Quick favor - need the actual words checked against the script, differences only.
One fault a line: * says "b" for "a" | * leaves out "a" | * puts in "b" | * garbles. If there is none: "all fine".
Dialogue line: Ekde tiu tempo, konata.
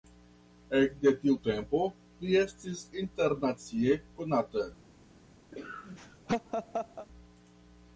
* puts in "li estis internacie"